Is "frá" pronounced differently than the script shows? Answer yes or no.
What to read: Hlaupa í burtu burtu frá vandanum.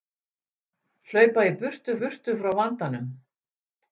no